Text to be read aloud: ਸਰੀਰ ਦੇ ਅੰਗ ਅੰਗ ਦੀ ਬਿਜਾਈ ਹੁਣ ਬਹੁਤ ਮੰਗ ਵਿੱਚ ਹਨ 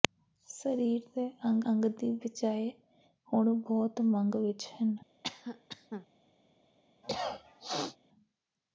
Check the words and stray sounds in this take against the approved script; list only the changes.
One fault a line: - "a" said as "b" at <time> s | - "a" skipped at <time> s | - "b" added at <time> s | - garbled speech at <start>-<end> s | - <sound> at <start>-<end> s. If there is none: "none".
- cough at 5.2-6.1 s
- cough at 7.0-8.0 s